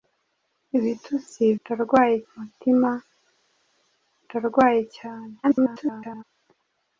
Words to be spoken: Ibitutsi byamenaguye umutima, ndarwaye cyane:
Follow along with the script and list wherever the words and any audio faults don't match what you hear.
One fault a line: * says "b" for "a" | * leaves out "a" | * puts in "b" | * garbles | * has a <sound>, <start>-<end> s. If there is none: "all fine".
* says "ndarwaye" for "byamenaguye"
* garbles